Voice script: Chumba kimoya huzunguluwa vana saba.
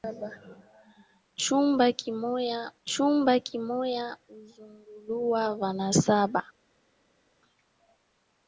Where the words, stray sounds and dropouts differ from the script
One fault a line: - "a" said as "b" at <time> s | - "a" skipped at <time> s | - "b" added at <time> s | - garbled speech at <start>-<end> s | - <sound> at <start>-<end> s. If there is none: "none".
- "chumba kimoya" added at 2.8 s